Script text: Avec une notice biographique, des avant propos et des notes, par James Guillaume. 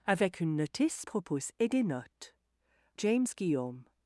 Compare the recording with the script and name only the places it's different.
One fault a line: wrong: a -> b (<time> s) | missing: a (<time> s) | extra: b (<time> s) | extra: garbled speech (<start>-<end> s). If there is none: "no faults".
missing: biographique des avant (1.1 s)
missing: par (2.4 s)